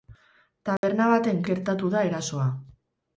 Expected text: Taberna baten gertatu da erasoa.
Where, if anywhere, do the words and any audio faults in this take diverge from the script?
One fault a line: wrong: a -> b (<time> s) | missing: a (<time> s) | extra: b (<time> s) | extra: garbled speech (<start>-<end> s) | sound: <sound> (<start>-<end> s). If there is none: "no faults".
sound: dropout (0.8-0.8 s)